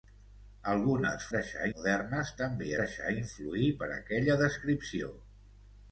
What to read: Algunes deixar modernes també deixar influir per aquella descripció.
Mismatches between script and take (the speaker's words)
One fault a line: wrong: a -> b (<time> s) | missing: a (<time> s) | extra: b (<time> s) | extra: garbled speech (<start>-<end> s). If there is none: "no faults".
no faults